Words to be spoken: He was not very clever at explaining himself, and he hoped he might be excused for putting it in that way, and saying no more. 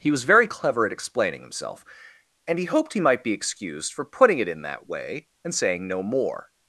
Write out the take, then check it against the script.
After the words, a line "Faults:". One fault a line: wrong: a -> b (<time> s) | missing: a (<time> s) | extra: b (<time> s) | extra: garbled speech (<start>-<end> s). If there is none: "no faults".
He was very clever at explaining himself, and he hoped he might be excused for putting it in that way, and saying no more.
Faults:
missing: not (0.2 s)